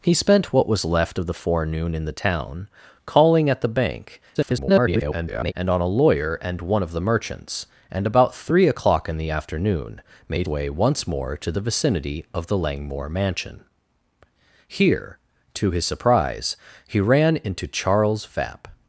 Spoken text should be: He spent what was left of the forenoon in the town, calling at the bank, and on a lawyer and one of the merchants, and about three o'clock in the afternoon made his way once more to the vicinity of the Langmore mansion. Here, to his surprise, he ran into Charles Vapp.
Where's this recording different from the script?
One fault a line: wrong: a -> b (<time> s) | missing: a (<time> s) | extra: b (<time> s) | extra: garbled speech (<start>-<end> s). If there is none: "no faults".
extra: garbled speech (4.3-5.5 s)
missing: his (10.5 s)